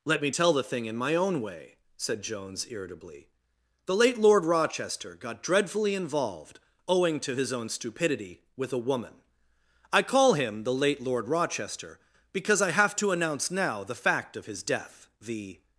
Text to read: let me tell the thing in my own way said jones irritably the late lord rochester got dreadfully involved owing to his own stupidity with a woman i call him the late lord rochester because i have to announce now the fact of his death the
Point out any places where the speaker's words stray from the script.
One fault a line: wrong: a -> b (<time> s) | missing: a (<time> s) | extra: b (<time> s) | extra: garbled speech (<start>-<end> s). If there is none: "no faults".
no faults